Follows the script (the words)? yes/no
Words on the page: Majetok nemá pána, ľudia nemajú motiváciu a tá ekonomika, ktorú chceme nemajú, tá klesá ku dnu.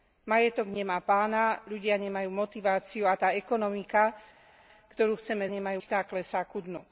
yes